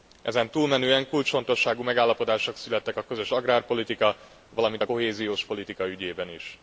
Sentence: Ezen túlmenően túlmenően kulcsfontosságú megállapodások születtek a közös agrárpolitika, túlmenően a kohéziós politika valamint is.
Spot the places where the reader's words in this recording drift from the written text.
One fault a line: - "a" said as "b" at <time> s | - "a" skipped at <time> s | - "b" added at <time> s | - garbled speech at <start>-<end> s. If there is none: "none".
- "túlmenően" skipped at 1.1 s
- "túlmenően" said as "valamint" at 4.5 s
- "valamint" said as "ügyében" at 5.9 s